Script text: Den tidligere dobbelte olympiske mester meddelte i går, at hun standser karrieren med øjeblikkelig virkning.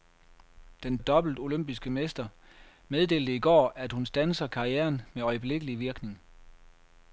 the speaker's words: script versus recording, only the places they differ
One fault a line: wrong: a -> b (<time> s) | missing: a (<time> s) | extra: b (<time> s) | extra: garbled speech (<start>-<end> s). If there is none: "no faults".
missing: tidligere (1.0 s)